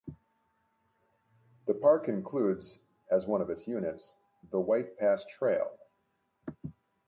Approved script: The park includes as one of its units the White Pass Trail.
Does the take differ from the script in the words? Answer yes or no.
no